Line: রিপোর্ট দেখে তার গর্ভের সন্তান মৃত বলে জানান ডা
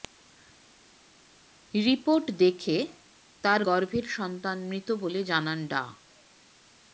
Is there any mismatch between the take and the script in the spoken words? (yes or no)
no